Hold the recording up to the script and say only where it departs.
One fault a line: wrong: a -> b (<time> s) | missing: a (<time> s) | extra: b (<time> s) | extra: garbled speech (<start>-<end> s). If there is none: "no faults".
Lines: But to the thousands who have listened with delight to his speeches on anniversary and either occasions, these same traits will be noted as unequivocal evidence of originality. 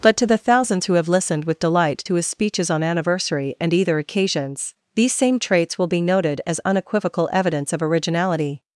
no faults